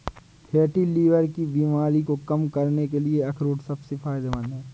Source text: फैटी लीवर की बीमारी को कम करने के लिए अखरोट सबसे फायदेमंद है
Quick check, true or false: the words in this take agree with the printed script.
true